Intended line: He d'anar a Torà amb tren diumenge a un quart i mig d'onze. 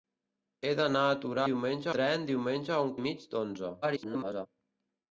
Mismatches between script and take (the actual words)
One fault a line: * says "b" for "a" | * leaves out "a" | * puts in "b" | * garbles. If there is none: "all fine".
* says "diumenge" for "amb"
* leaves out "quart"
* garbles